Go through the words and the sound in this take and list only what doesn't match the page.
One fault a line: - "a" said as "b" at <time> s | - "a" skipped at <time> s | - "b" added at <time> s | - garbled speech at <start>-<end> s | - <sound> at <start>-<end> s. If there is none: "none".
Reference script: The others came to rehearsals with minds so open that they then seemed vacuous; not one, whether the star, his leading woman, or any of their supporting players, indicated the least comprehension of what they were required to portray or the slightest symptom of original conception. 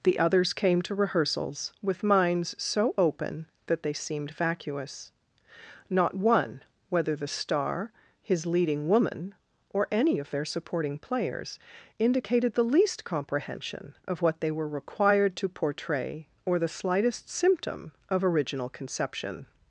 - "then" skipped at 3.9 s